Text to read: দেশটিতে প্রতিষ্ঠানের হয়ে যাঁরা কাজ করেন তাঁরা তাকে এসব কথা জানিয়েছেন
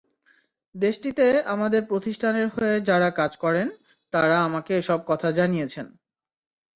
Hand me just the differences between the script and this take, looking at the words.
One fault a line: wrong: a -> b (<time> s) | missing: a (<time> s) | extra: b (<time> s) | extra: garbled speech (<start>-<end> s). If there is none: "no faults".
extra: আমাদের (1.4 s)
wrong: তাকে -> আমাকে (4.4 s)